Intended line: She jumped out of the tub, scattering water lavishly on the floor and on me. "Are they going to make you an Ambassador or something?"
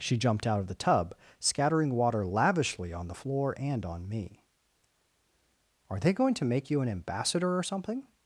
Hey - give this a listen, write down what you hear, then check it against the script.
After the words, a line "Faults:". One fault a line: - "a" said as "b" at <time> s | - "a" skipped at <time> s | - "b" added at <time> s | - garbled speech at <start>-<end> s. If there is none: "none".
She jumped out of the tub, scattering water lavishly on the floor and on me. "Are they going to make you an Ambassador or something?"
Faults:
none